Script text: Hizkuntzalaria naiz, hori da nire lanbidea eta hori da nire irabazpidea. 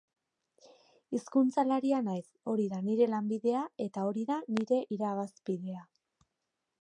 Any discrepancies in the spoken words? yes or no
no